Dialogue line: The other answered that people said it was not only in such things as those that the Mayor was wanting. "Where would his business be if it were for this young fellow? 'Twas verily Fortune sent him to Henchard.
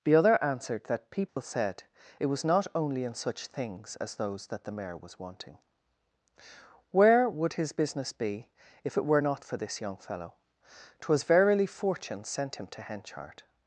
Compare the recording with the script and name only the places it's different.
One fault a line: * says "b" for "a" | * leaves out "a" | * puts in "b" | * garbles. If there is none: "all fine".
* puts in "not"